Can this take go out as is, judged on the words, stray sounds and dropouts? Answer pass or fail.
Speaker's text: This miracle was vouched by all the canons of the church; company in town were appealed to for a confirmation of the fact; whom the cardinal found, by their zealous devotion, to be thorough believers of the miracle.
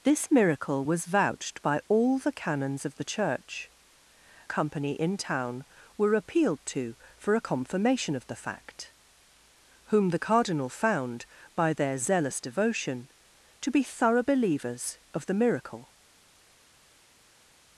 pass